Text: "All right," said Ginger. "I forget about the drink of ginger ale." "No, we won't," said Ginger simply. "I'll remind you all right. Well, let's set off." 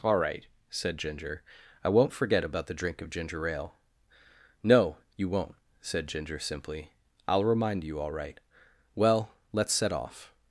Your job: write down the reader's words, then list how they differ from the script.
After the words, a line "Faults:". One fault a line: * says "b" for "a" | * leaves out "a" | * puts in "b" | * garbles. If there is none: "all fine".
"All right," said Ginger. "I won't forget about the drink of ginger ale." "No, you won't," said Ginger simply. "I'll remind you all right. Well, let's set off."
Faults:
* puts in "won't"
* says "you" for "we"